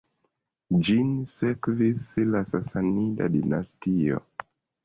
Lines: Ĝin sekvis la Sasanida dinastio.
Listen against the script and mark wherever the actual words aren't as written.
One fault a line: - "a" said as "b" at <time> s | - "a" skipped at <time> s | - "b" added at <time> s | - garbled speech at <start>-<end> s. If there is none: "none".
none